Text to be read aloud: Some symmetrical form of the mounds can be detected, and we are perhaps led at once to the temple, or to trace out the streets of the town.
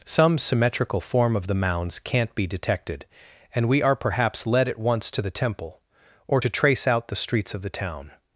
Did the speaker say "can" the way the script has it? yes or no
no